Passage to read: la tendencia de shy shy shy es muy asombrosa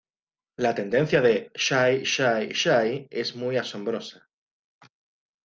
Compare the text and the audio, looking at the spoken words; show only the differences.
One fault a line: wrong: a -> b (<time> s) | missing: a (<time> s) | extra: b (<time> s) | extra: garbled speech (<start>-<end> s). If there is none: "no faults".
no faults